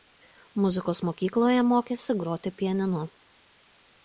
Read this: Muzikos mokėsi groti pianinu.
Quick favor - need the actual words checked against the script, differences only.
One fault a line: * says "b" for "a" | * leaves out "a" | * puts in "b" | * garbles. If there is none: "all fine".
* puts in "mokykloje"